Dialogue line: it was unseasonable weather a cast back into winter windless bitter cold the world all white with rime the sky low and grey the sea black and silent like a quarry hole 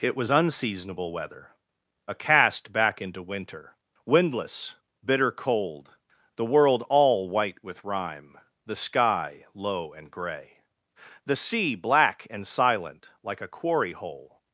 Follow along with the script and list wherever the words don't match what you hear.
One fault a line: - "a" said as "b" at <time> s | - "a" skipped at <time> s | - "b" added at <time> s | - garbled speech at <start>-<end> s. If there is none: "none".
none